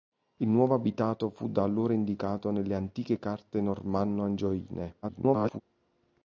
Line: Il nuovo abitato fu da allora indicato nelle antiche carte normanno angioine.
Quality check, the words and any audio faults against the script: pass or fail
fail